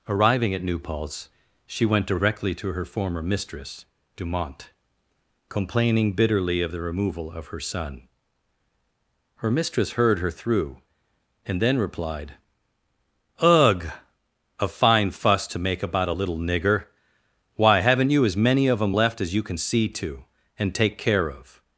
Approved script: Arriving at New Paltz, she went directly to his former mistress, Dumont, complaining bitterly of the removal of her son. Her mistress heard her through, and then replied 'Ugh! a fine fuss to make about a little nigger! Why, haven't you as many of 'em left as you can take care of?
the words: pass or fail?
fail